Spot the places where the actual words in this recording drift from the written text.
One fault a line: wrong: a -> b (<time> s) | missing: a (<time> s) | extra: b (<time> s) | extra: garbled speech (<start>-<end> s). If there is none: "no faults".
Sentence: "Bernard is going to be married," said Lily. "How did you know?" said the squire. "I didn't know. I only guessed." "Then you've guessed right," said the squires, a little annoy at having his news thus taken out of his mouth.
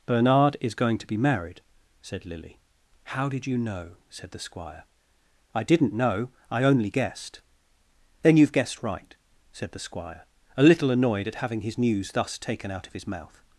wrong: squires -> squire (9.8 s)
wrong: annoy -> annoyed (10.9 s)